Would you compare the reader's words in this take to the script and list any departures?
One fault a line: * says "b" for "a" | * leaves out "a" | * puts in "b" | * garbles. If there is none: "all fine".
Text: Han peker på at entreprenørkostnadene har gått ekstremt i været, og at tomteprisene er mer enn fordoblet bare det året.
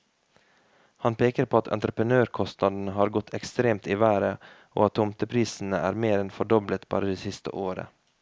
* puts in "siste"